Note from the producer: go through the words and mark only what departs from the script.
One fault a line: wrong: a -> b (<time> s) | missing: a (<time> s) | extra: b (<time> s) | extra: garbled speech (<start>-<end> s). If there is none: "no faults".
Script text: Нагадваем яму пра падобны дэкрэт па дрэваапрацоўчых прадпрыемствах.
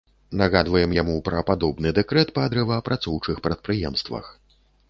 no faults